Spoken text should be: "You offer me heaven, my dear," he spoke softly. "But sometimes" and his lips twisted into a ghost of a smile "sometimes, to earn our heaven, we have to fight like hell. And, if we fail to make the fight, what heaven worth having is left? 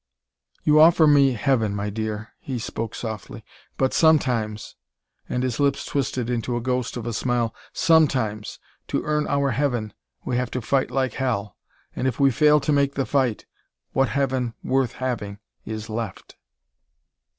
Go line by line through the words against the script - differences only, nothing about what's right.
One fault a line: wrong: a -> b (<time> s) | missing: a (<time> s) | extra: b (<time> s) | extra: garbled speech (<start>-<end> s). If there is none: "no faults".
no faults